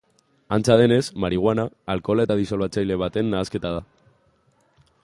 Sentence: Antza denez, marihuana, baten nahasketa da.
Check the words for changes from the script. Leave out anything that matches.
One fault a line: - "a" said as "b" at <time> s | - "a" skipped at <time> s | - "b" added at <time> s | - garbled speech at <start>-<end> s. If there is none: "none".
- "alkohola eta disolbatzaile" added at 1.9 s